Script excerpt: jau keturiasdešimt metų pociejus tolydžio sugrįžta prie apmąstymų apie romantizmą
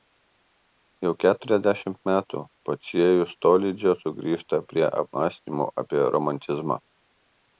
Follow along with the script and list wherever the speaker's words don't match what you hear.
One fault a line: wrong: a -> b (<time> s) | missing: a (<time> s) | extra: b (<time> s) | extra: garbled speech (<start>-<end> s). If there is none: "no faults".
no faults